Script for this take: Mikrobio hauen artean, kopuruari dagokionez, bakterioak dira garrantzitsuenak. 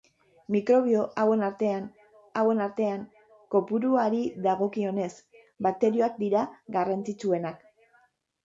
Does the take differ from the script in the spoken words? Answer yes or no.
yes